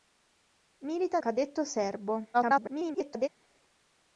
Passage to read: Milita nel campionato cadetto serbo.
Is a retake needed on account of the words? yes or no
yes